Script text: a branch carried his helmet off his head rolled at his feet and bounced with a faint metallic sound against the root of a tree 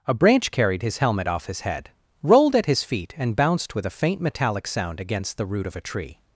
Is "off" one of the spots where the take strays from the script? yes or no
no